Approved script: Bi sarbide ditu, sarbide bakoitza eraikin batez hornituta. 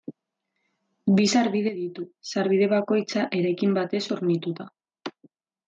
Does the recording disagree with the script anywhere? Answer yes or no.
no